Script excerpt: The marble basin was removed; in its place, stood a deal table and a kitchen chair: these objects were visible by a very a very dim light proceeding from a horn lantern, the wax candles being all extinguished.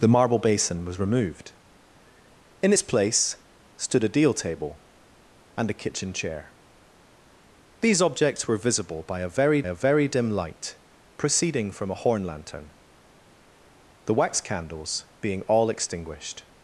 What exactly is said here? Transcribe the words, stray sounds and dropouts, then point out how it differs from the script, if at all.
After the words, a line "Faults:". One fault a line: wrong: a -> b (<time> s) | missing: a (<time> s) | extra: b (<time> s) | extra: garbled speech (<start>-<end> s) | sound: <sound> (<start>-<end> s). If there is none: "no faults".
The marble basin was removed; in its place, stood a deal table and a kitchen chair: these objects were visible by a very a very dim light proceeding from a horn lantern, the wax candles being all extinguished.
Faults:
no faults